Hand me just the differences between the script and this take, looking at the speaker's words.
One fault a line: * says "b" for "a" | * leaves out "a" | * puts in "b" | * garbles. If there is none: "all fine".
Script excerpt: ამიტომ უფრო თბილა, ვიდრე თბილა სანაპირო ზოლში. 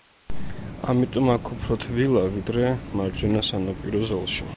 * puts in "აქ"
* says "მარჯვენა" for "თბილა"